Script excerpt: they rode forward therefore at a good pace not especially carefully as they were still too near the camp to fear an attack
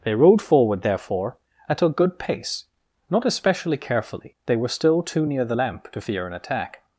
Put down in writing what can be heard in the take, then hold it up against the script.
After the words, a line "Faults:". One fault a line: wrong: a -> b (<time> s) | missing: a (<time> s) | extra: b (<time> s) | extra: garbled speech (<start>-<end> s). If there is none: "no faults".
they rode forward therefore at a good pace not especially carefully they were still too near the lamp to fear an attack
Faults:
missing: as (4.3 s)
wrong: camp -> lamp (5.5 s)